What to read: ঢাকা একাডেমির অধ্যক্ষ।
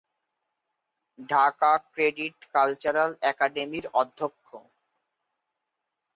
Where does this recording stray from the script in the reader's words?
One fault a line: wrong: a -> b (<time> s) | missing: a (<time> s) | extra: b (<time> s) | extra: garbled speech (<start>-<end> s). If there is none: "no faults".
extra: ক্রেডিট কালচারাল (1.9 s)